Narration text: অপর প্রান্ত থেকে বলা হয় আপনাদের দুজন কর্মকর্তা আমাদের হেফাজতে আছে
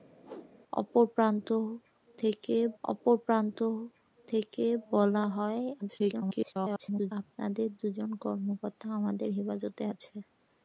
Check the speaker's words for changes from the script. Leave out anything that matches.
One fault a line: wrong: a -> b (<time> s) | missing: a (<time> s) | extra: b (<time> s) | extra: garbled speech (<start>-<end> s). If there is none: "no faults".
extra: অপর প্রান্ত থেকে (2.8 s)
extra: garbled speech (5.8-7.1 s)